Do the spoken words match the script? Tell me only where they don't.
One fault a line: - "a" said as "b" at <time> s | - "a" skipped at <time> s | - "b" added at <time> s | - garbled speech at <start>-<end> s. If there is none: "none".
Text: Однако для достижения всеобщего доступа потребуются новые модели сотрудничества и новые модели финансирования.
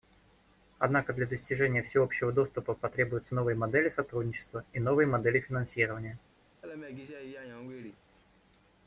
none